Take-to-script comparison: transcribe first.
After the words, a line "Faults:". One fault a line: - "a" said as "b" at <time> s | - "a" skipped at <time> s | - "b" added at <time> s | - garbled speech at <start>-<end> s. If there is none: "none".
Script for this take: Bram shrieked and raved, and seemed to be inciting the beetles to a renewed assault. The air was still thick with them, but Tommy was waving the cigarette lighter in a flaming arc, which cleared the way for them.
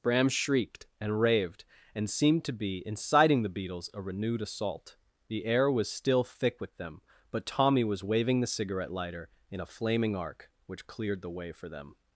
Bram shrieked and raved, and seemed to be inciting the beetles a renewed assault. The air was still thick with them, but Tommy was waving the cigarette lighter in a flaming arc, which cleared the way for them.
Faults:
- "to" skipped at 3.9 s